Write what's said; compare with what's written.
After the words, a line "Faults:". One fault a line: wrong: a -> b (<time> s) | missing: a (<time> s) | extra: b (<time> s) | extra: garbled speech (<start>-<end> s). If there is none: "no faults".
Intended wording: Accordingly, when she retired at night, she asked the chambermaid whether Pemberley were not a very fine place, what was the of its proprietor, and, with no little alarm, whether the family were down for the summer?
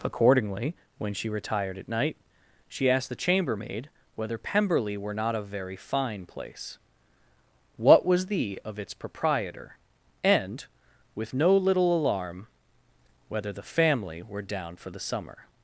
Accordingly, when she retired at night, she asked the chambermaid whether Pemberley were not a very fine place, what was the of its proprietor, and, with no little alarm, whether the family were down for the summer?
Faults:
no faults